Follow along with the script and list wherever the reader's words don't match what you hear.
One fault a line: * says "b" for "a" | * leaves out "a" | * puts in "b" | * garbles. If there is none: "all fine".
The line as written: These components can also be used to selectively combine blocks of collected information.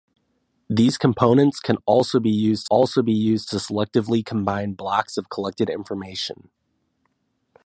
* puts in "also be used"